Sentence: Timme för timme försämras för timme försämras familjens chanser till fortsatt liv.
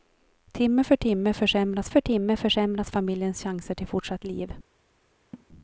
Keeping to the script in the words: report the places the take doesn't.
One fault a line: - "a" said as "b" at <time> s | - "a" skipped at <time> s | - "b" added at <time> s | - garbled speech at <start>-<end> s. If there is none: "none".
none